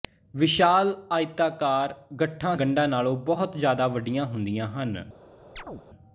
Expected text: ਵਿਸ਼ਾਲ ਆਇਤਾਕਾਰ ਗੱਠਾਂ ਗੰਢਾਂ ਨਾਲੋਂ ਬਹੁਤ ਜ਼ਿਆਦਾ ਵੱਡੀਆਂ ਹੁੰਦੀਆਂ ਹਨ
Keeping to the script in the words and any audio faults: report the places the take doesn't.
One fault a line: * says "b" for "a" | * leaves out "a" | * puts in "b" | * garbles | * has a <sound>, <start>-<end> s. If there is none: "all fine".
* has a chirp, 5.6-5.8 s